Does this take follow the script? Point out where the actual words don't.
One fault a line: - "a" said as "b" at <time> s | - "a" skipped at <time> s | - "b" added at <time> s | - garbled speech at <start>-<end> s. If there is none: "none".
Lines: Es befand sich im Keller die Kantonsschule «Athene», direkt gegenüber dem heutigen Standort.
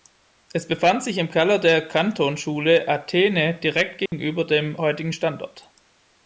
- "die" said as "der" at 1.6 s